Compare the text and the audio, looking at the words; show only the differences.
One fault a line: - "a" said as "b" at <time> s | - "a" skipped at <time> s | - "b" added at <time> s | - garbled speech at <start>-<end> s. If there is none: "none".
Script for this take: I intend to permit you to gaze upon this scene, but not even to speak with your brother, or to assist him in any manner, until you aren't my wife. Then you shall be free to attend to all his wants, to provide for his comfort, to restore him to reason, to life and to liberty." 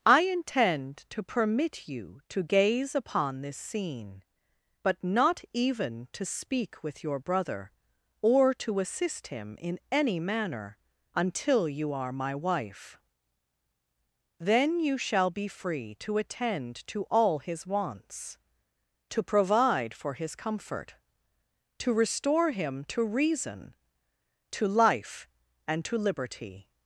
- "aren't" said as "are" at 11.9 s